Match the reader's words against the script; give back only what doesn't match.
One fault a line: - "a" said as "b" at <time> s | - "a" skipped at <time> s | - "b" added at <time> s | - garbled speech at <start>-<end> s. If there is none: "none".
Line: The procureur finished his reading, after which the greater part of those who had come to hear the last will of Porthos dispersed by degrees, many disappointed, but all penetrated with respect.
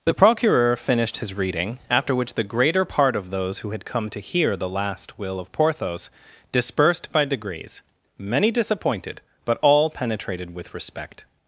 none